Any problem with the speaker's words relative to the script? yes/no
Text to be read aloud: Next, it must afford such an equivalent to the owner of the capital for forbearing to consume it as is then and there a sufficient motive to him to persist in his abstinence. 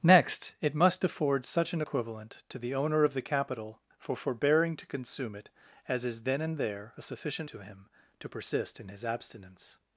yes